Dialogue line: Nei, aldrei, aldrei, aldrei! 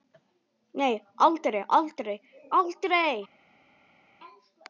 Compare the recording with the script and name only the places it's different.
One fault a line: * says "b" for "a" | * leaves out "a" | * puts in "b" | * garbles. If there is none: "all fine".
all fine